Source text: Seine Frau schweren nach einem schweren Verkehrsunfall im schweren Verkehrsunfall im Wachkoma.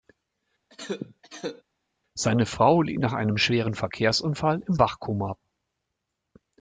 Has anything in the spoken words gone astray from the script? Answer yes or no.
yes